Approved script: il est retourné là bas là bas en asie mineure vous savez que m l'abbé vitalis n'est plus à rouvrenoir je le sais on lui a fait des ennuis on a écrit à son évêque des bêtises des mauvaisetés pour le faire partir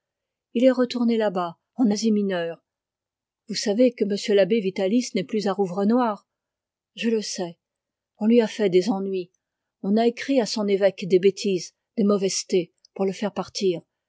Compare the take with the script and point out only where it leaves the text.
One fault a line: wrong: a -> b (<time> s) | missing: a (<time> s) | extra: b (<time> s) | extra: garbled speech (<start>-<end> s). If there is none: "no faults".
missing: là bas (1.6 s)